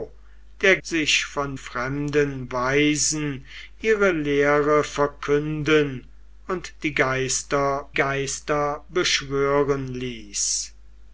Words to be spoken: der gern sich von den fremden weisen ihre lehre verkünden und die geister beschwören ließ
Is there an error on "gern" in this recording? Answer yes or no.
yes